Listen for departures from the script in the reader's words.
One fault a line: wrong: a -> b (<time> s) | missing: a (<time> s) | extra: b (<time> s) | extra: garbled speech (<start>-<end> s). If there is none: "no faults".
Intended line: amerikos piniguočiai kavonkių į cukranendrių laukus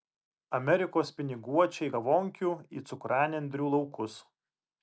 no faults